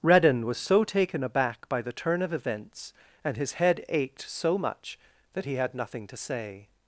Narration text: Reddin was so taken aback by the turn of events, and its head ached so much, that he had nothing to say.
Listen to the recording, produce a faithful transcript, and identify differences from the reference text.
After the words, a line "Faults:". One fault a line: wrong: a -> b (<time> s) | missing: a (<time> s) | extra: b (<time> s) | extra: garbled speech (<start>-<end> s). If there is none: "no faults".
Reddin was so taken aback by the turn of events, and his head ached so much, that he had nothing to say.
Faults:
wrong: its -> his (3.4 s)